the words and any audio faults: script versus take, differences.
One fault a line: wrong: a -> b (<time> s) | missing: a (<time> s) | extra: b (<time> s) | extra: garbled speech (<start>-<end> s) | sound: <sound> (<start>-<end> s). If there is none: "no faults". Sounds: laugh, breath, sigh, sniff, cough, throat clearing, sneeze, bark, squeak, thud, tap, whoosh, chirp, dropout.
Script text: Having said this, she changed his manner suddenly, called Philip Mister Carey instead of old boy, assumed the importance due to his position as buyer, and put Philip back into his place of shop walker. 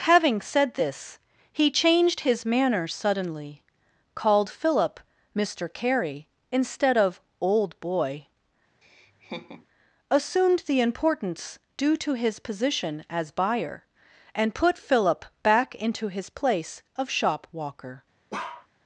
wrong: she -> he (1.5 s)
sound: laugh (8.8-9.7 s)
sound: bark (18.3-18.7 s)